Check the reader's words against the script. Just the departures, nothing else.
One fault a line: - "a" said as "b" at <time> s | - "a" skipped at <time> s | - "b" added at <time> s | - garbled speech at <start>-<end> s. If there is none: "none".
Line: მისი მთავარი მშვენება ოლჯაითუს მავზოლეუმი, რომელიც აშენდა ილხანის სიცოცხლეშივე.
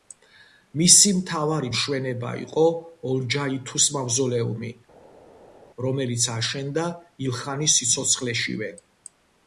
- "იყო" added at 2.4 s